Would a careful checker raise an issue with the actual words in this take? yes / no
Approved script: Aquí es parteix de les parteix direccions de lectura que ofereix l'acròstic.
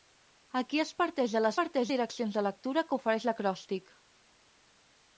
no